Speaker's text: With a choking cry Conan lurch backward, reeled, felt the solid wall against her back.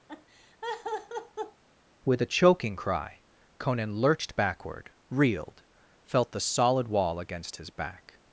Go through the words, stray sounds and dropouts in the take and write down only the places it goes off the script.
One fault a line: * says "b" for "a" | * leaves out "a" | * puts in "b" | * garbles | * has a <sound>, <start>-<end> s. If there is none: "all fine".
* has a laugh, 0.1-1.6 s
* says "lurched" for "lurch"
* says "his" for "her"